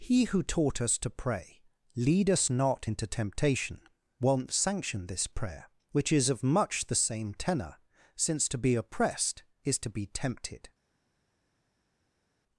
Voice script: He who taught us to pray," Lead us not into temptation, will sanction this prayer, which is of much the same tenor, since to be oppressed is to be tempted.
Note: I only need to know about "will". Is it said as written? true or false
false